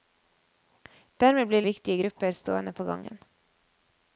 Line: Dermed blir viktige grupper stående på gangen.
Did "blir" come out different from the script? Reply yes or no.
no